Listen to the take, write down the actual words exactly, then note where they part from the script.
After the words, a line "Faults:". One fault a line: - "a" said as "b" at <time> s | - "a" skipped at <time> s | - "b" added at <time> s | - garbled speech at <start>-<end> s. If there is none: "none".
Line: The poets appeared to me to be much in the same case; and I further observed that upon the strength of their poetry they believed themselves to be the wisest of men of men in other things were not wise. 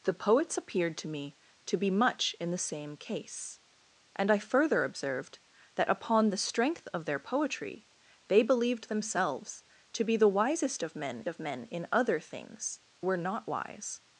The poets appeared to me to be much in the same case; and I further observed that upon the strength of their poetry they believed themselves to be the wisest of men of men in other things were not wise.
Faults:
none